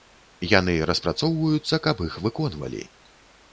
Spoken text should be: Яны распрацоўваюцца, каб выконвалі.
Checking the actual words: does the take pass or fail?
fail